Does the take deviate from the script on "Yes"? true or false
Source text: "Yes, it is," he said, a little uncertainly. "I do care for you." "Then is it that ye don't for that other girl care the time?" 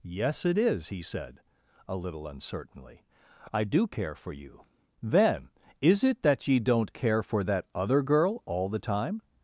false